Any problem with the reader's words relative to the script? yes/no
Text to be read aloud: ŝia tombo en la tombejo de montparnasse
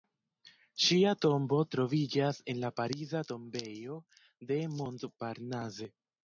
yes